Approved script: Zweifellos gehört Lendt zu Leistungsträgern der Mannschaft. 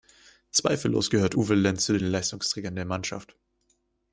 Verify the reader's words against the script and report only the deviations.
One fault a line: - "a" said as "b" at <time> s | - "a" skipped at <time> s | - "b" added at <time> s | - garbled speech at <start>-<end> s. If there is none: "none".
- "Uwe" added at 1.3 s
- "den" added at 2.0 s